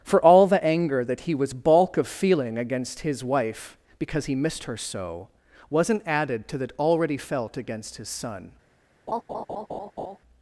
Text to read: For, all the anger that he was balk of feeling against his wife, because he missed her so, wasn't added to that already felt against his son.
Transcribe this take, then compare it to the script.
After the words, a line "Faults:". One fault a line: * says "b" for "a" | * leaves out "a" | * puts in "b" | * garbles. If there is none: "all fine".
For, all the anger that he was balk of feeling against his wife, because he missed her so, wasn't added to that already felt against his son.
Faults:
all fine